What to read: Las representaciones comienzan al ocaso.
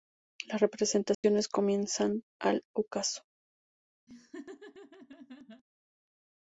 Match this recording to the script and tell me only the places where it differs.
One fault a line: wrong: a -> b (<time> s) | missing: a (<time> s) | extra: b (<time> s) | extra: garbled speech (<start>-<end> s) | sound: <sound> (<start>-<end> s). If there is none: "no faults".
sound: dropout (1.1-1.2 s)
sound: laugh (4.1-5.6 s)